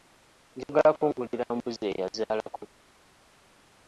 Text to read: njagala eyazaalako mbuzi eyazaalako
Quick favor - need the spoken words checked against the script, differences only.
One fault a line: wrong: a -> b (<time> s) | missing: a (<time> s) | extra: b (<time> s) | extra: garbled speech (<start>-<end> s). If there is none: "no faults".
wrong: eyazaalako -> kungulira (1.0 s)